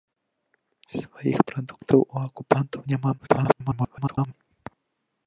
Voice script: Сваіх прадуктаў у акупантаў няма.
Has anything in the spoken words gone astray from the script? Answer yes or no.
yes